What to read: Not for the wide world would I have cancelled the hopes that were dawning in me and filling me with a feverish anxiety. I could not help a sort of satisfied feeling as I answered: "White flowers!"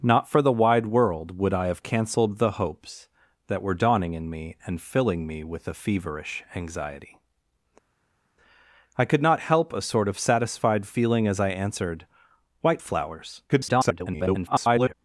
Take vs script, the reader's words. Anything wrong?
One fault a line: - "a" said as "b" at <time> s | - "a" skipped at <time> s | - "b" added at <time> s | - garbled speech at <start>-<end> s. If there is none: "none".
- garbled speech at 13.5-14.9 s